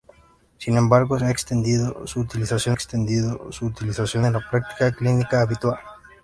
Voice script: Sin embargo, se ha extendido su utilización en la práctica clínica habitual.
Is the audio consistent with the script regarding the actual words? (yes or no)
no